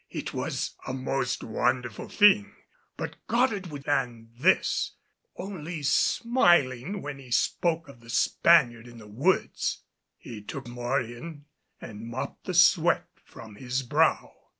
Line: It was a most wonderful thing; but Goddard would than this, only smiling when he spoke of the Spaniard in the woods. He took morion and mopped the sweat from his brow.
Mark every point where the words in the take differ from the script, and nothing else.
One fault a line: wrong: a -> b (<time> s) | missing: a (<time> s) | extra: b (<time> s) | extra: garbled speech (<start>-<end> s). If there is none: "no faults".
no faults